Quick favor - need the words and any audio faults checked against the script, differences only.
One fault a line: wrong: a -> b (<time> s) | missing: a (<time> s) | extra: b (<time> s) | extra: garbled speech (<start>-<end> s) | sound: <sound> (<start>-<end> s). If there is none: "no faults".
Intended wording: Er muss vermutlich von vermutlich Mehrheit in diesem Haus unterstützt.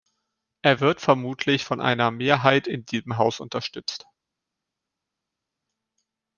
wrong: muss -> wird (0.8 s)
wrong: vermutlich -> einer (1.8 s)